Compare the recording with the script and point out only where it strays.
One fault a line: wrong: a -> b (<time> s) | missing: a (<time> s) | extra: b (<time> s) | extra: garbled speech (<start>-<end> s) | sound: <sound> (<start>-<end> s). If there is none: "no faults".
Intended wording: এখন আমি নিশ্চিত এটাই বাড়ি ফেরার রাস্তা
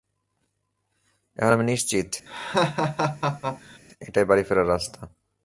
sound: laugh (2.3-3.8 s)